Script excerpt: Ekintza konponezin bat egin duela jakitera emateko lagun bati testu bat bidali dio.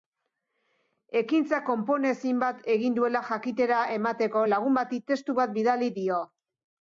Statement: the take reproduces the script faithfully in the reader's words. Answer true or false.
true